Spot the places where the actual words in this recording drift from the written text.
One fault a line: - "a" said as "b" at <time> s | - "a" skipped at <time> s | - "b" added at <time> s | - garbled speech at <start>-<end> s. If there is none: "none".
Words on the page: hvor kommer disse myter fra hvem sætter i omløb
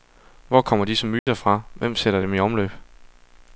- "dem" added at 2.2 s